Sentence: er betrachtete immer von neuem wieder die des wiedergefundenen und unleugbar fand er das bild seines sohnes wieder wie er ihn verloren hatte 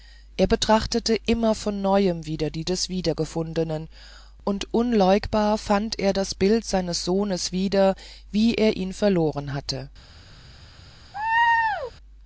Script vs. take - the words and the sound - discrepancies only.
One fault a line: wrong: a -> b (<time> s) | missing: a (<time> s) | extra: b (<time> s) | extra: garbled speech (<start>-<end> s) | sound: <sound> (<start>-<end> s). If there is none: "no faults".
sound: laugh (11.1-11.9 s)